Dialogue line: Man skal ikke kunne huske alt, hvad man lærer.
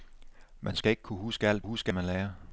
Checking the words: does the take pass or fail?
fail